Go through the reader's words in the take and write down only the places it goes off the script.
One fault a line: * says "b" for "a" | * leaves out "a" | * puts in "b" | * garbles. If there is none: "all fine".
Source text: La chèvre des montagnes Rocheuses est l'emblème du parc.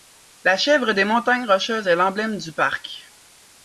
all fine